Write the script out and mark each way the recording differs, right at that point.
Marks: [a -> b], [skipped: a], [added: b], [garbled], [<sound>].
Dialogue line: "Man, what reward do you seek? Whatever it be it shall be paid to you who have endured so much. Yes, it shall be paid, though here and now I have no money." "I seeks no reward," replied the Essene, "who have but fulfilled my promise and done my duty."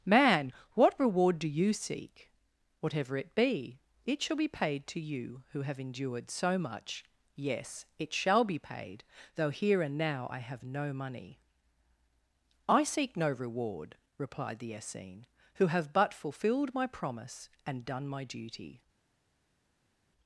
"Man, what reward do you seek? Whatever it be it shall be paid to you who have endured so much. Yes, it shall be paid, though here and now I have no money." "I [seeks -> seek] no reward," replied the Essene, "who have but fulfilled my promise and done my duty."